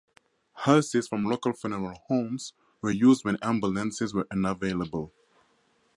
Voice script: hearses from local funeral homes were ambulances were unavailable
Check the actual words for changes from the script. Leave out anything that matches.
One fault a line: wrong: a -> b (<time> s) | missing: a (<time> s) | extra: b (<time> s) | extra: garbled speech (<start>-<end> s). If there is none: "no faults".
extra: used when (2.9 s)